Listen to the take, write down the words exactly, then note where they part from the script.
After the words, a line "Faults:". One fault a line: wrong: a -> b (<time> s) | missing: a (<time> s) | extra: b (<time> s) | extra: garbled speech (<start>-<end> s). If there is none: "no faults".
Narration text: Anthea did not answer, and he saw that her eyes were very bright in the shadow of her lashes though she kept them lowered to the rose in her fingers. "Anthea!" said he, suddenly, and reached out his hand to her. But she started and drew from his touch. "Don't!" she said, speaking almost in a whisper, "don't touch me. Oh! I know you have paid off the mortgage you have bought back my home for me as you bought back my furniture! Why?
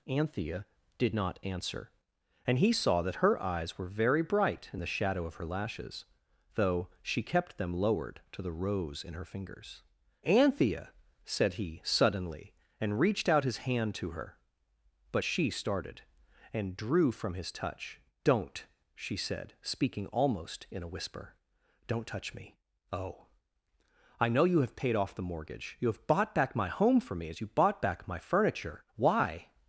Anthea did not answer, and he saw that her eyes were very bright in the shadow of her lashes though she kept them lowered to the rose in her fingers. "Anthea!" said he, suddenly, and reached out his hand to her. But she started and drew from his touch. "Don't!" she said, speaking almost in a whisper, "don't touch me. Oh! I know you have paid off the mortgage you have bought back my home for me as you bought back my furniture! Why?
Faults:
no faults